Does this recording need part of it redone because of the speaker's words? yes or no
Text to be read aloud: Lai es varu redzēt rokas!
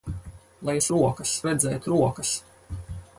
yes